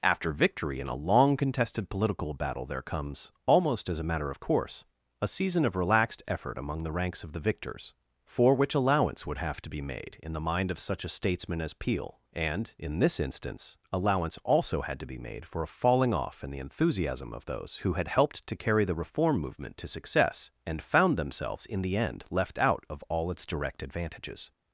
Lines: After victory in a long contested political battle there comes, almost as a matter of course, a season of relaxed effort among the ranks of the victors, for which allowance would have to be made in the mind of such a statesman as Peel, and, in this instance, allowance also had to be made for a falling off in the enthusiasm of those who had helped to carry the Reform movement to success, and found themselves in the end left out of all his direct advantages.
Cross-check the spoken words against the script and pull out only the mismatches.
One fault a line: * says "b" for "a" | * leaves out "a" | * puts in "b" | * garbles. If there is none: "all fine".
* says "its" for "his"